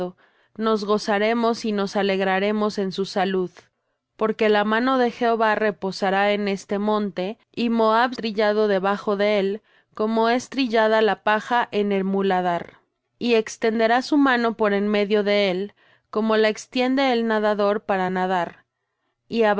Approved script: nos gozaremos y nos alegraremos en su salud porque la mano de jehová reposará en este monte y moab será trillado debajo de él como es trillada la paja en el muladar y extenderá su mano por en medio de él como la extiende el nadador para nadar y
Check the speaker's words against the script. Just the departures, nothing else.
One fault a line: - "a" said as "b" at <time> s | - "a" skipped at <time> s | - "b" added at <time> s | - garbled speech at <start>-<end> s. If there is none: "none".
- "será" skipped at 8.1 s